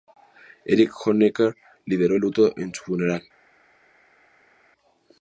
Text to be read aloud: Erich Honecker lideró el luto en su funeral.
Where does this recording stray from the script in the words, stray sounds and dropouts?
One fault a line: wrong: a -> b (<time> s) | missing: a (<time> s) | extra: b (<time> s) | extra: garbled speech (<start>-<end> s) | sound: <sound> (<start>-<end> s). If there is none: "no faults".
no faults